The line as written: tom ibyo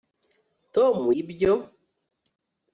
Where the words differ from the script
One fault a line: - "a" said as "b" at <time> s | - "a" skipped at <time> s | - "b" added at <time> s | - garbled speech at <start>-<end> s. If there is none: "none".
none